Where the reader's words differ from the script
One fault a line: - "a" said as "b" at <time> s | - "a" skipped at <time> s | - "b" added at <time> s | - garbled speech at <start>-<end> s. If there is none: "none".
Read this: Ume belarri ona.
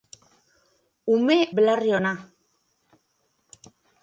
none